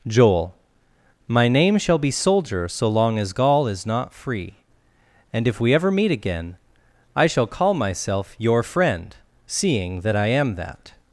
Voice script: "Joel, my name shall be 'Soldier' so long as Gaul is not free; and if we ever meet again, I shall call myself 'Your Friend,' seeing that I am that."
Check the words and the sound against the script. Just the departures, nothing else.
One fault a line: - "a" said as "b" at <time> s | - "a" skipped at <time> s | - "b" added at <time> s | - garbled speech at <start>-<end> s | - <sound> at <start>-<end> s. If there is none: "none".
none